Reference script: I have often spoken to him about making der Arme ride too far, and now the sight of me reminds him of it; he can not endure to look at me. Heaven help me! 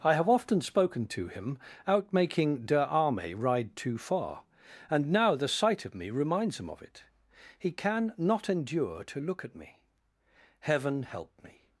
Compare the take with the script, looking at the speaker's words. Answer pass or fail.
fail